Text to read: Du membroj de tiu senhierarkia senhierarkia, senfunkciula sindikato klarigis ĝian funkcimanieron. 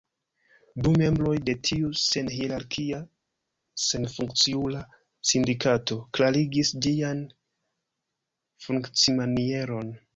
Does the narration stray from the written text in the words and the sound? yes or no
yes